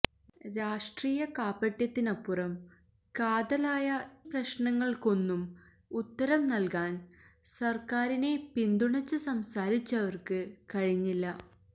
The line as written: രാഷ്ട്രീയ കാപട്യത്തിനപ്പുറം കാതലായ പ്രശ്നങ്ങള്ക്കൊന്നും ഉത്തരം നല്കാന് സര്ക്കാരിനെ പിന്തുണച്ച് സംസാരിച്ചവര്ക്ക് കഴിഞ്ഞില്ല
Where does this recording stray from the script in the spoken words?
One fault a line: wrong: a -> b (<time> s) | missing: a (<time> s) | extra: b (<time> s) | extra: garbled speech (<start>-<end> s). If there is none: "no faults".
no faults